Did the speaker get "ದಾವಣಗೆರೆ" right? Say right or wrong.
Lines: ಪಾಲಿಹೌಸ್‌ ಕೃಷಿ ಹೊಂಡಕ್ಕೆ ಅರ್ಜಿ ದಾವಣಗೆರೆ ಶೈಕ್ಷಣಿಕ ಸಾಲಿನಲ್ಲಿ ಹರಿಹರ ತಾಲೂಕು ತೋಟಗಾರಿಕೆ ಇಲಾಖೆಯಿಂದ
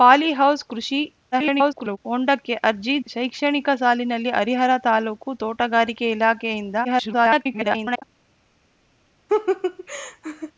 wrong